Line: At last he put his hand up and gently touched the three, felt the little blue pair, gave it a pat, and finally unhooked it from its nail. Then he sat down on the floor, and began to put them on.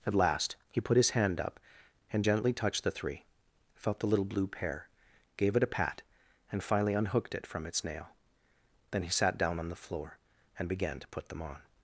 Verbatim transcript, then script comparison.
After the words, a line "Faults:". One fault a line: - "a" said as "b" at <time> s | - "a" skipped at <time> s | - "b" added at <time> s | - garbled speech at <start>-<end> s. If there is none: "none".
At last he put his hand up and gently touched the three, felt the little blue pair, gave it a pat, and finally unhooked it from its nail. Then he sat down on the floor, and began to put them on.
Faults:
none